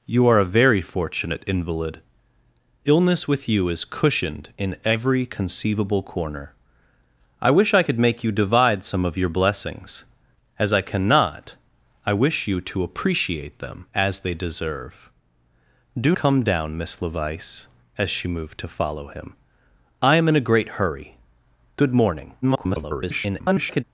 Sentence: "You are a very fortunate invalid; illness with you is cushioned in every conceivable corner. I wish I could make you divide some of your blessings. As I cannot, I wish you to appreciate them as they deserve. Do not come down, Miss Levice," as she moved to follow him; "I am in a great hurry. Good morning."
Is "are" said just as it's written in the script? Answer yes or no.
yes